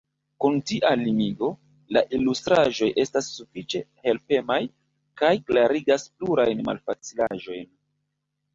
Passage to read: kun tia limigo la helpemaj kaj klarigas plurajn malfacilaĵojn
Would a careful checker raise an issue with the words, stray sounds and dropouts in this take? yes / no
yes